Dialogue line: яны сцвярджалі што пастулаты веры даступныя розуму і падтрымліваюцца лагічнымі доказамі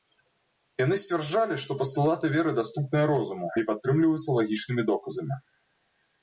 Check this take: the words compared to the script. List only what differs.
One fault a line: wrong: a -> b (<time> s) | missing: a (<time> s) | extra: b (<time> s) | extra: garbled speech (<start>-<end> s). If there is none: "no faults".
no faults